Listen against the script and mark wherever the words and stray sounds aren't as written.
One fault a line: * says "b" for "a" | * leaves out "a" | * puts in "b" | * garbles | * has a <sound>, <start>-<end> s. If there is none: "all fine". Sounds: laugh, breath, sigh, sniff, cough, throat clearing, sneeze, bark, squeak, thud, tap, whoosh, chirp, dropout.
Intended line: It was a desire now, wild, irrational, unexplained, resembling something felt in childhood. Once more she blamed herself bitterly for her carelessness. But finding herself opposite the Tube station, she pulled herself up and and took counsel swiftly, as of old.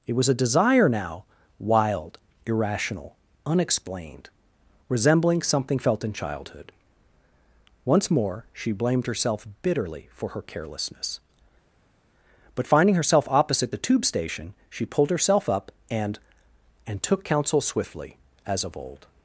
all fine